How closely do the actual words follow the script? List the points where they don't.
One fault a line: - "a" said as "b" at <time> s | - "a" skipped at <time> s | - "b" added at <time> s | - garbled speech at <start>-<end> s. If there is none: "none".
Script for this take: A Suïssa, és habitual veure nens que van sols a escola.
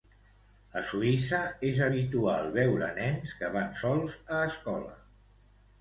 none